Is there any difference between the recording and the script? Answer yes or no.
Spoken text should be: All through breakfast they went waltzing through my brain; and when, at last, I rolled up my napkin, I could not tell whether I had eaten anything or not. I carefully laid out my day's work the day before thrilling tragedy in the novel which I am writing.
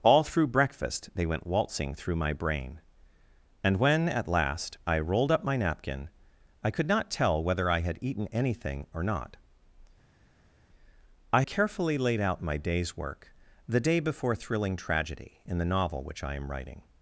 no